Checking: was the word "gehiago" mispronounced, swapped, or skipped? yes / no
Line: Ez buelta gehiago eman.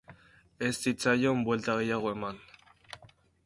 no